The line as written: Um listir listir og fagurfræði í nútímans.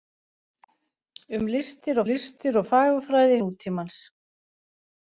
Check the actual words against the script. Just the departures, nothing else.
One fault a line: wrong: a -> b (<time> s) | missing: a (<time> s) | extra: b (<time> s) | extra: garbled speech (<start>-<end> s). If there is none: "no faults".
no faults